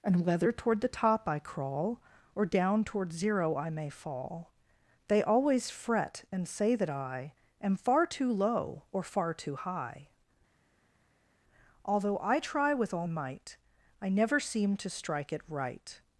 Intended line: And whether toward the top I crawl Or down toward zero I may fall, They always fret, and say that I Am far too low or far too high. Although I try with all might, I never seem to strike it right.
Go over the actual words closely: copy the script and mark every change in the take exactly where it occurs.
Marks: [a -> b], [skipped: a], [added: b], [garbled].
And whether toward the top I crawl Or down toward zero I may fall, They always fret, and say that I Am far too low or far too high. Although I try with all might, I never seem to strike it right.